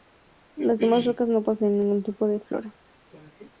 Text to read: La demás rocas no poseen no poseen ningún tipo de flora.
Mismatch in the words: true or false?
true